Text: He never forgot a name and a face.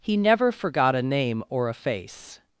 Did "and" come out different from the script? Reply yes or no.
yes